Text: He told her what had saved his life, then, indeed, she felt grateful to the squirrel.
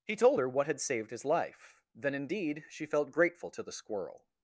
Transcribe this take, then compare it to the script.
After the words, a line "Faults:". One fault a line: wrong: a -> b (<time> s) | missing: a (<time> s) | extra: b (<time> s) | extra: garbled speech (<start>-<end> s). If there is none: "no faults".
He told her what had saved his life, then, indeed, she felt grateful to the squirrel.
Faults:
no faults